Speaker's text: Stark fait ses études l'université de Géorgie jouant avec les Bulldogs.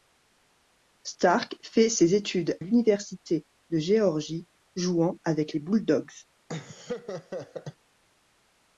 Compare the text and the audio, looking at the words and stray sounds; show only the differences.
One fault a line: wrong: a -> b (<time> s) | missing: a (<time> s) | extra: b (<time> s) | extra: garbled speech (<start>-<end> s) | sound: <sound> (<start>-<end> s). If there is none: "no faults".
sound: laugh (6.5-7.8 s)